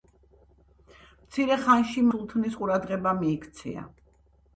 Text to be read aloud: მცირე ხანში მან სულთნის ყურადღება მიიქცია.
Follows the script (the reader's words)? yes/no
no